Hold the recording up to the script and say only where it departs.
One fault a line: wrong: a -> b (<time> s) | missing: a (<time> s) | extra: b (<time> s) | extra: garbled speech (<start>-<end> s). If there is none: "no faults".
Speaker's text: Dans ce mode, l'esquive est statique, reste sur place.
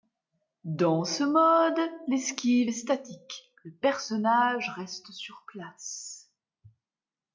extra: le personnage (3.6 s)